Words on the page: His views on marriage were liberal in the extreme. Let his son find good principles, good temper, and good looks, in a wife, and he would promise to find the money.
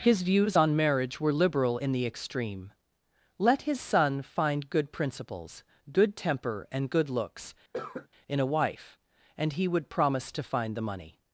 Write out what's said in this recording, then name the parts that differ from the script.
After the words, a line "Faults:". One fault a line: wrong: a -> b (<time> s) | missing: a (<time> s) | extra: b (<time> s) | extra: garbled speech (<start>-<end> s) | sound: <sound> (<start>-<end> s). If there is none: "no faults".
His views on marriage were liberal in the extreme. Let his son find good principles, good temper, and good looks, in a wife, and he would promise to find the money.
Faults:
sound: cough (7.7-8.1 s)